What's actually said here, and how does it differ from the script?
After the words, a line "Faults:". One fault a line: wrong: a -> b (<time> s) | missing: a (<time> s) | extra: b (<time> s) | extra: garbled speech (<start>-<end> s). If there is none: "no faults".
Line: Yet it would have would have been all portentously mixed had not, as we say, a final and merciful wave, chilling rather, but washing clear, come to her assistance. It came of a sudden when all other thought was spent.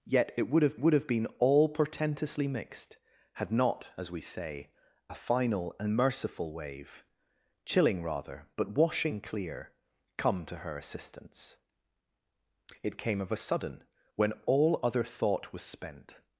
Yet it would have would have been all portentously mixed had not, as we say, a final and merciful wave, chilling rather, but washing clear, come to her assistance. It came of a sudden when all other thought was spent.
Faults:
no faults